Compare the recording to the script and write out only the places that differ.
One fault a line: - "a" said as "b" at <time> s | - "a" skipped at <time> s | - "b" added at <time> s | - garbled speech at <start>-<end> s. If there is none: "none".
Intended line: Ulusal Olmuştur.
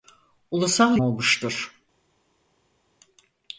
none